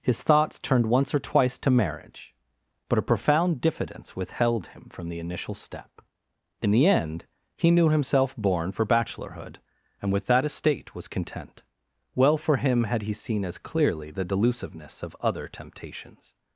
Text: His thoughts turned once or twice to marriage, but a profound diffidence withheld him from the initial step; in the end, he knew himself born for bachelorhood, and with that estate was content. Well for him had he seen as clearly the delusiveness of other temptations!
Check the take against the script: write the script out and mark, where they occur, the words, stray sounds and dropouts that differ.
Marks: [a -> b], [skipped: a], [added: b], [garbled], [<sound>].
His thoughts turned once or twice to marriage, but a profound diffidence withheld him from the initial step; in the end, he knew himself born for bachelorhood, and with that estate was content. Well for him had he seen as clearly the delusiveness of other temptations!